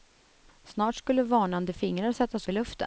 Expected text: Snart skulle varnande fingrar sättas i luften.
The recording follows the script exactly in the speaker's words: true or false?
true